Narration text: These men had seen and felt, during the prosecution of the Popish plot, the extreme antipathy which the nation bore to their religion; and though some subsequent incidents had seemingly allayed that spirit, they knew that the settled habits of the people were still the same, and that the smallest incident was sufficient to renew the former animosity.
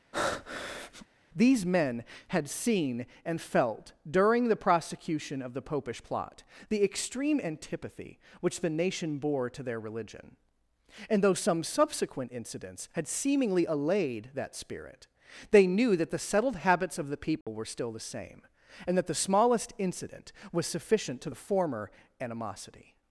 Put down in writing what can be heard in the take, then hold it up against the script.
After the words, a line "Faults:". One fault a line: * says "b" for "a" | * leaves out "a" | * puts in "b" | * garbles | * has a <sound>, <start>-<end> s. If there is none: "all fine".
These men had seen and felt, during the prosecution of the Popish plot, the extreme antipathy which the nation bore to their religion; and though some subsequent incidents had seemingly allayed that spirit, they knew that the settled habits of the people were still the same, and that the smallest incident was sufficient to the former animosity.
Faults:
* has a breath, 0.1-1.1 s
* has a dropout, 17.4-17.5 s
* leaves out "renew"